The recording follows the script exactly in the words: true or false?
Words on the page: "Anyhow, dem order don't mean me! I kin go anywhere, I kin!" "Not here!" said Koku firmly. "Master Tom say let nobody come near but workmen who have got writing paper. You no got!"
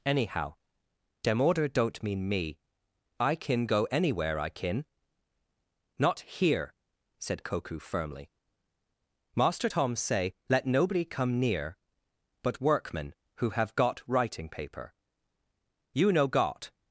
true